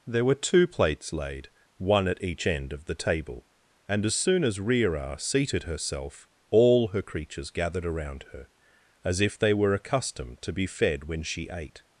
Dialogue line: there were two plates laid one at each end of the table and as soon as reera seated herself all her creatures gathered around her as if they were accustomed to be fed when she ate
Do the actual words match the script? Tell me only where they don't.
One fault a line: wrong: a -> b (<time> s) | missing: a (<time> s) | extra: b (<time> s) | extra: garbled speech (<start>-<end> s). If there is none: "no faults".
no faults